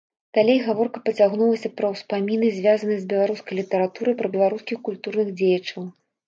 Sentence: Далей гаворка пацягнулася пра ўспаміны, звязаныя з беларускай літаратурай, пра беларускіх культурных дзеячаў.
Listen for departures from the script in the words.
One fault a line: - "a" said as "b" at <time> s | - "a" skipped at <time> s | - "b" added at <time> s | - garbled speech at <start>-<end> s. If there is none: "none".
none